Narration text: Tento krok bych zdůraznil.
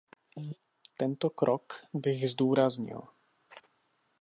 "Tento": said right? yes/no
yes